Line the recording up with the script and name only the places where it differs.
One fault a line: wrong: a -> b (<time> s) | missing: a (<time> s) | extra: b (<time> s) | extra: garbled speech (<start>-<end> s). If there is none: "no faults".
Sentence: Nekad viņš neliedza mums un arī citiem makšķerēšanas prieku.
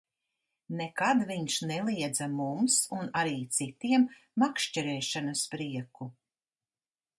no faults